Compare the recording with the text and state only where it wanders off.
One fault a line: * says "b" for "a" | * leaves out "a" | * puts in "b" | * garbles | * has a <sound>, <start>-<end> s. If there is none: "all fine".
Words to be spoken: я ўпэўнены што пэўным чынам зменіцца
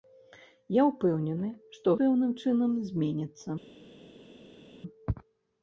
all fine